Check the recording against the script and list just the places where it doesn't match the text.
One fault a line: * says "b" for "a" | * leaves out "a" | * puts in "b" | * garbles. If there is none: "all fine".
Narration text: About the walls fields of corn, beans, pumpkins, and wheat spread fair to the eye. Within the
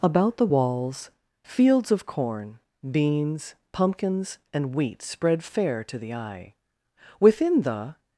all fine